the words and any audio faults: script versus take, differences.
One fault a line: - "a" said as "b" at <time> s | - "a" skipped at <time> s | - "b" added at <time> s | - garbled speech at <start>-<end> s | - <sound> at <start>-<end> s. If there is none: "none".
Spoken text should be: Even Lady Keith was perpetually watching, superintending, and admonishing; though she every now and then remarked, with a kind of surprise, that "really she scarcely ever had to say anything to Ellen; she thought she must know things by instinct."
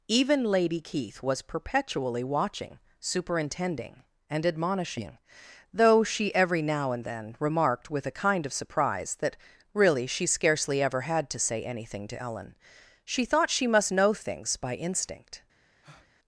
- breath at 15.8-16.1 s